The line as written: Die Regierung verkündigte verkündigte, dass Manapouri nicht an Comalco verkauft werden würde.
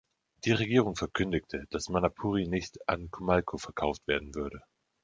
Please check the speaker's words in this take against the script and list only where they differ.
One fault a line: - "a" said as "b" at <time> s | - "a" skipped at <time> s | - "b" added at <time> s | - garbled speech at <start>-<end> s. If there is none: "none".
- "verkündigte" skipped at 1.7 s